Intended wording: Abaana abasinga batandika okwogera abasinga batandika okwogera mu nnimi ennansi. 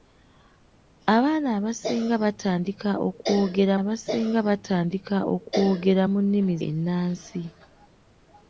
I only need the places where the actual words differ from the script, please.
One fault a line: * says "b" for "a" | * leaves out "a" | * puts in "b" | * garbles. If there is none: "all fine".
all fine